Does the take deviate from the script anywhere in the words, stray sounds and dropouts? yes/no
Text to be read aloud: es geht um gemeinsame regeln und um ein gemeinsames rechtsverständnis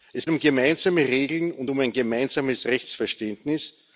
yes